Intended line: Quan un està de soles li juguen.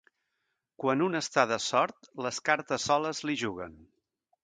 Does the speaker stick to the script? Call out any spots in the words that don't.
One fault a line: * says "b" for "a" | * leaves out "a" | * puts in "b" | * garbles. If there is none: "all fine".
* puts in "sort les cartes"